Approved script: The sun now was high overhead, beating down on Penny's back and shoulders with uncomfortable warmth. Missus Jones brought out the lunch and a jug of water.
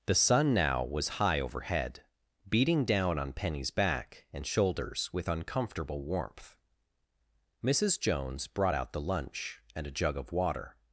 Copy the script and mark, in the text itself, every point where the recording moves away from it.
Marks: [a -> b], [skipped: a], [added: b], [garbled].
The sun now was high overhead, beating down on Penny's back and shoulders with uncomfortable warmth. Missus Jones brought out the lunch and a jug of water.